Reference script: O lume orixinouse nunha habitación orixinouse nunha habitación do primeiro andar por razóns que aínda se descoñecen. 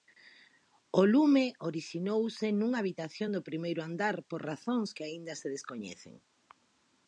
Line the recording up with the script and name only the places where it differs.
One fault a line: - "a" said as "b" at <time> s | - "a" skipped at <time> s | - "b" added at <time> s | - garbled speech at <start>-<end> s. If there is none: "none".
- "orixinouse nunha habitación" skipped at 3.3 s